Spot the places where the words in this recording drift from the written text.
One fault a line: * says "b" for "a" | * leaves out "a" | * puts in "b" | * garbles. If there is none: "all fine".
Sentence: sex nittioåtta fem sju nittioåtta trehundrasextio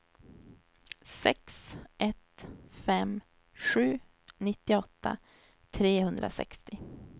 * says "ett" for "nittioåtta"